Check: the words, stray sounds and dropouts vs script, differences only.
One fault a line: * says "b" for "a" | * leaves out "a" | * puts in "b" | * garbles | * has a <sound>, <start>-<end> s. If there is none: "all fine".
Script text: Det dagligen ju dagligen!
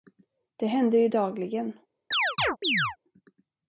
* says "händer" for "dagligen"
* has a chirp, 2.1-3.0 s